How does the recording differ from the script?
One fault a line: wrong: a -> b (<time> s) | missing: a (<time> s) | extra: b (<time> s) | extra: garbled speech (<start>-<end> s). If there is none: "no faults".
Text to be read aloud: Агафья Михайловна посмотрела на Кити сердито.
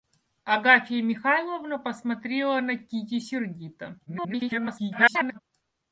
extra: garbled speech (4.1-5.4 s)